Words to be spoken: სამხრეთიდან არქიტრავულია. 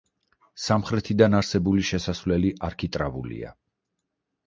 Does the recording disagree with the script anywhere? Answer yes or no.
yes